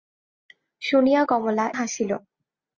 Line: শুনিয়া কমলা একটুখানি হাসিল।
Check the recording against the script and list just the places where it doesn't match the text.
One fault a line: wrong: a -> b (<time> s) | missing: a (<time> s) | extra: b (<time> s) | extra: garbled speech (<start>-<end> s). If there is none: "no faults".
missing: একটুখানি (1.6 s)